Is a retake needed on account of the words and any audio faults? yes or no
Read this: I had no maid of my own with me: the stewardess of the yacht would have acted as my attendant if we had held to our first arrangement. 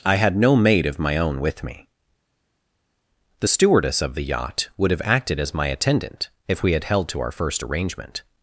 no